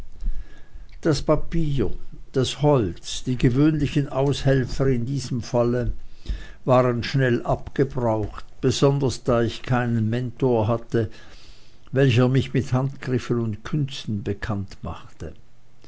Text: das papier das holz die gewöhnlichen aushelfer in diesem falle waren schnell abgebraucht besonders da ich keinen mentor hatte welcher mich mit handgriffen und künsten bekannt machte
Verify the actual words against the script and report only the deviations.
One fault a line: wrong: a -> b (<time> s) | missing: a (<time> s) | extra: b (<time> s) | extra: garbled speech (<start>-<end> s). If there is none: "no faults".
no faults